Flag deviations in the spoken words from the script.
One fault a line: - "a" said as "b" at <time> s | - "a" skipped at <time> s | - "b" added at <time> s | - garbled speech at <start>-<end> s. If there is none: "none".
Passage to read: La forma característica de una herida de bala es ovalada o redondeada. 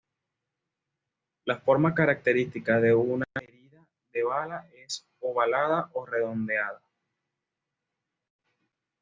none